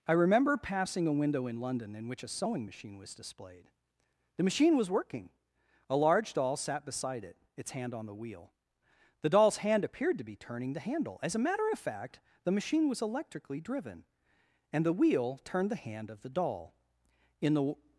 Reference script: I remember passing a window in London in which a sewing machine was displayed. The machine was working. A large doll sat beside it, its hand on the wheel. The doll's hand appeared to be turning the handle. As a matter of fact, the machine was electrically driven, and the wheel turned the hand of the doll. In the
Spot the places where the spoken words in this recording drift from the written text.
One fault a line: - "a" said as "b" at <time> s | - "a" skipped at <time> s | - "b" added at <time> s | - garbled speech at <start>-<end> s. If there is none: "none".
none